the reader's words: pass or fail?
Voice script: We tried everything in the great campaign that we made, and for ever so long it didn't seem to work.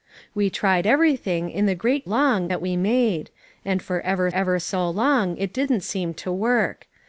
fail